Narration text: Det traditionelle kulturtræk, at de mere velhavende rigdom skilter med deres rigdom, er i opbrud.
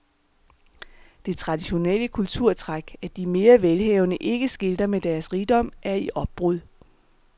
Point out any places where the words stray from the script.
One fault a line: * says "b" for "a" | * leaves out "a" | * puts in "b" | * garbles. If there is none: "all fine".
* says "ikke" for "rigdom"